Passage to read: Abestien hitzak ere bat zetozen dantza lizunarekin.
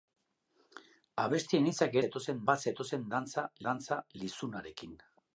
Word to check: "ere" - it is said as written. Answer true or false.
false